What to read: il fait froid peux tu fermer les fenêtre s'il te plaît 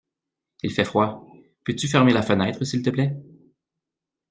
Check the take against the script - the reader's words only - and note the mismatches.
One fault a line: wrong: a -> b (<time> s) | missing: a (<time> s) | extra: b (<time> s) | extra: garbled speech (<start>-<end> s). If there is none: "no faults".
wrong: les -> la (2.1 s)